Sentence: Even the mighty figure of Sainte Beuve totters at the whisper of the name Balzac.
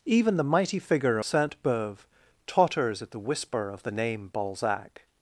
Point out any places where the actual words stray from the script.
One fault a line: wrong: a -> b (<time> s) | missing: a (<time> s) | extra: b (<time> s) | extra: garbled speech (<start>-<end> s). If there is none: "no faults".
missing: of (1.2 s)